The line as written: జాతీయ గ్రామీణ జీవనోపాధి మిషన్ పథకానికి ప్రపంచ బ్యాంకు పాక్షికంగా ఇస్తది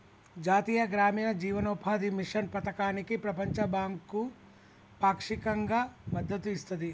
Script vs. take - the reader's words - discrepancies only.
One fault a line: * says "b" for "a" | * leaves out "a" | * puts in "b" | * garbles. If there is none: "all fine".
* puts in "మద్దతు"